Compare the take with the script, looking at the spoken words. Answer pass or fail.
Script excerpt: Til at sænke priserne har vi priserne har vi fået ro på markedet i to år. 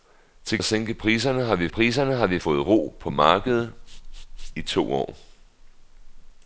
pass